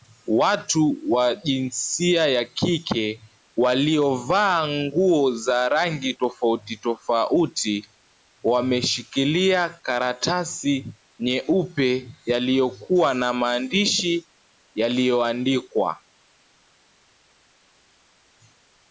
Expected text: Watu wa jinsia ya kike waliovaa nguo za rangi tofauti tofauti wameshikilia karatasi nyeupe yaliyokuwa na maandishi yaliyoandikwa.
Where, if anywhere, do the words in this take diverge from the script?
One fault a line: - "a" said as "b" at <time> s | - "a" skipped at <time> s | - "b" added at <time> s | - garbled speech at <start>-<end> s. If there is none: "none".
none